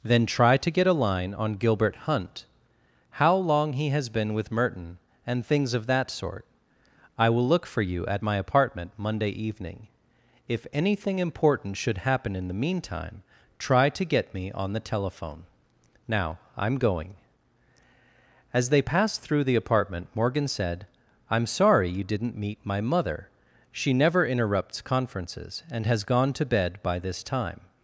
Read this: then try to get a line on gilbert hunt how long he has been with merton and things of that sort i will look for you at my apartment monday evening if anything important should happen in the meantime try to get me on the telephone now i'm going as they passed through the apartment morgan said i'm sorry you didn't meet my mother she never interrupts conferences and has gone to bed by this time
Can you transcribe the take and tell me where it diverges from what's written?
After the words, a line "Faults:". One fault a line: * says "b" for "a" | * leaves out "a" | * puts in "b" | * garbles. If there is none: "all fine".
then try to get a line on gilbert hunt how long he has been with merton and things of that sort i will look for you at my apartment monday evening if anything important should happen in the meantime try to get me on the telephone now i'm going as they passed through the apartment morgan said i'm sorry you didn't meet my mother she never interrupts conferences and has gone to bed by this time
Faults:
all fine